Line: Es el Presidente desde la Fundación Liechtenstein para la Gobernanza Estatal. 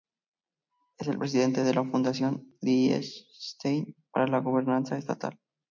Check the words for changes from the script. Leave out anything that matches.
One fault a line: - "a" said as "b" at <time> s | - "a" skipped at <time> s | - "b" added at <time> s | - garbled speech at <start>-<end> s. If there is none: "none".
- "desde" said as "de" at 1.6 s